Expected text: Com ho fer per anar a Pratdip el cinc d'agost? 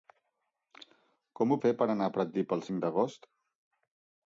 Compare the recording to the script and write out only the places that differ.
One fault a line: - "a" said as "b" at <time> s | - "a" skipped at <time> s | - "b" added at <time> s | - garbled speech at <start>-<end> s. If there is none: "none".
none